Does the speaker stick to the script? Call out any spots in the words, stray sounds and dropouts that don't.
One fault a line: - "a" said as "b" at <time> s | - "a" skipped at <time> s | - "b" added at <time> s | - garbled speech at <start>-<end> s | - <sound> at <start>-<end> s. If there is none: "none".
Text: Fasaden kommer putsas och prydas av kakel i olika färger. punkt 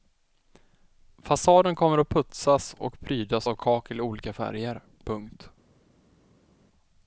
- "att" added at 2.0 s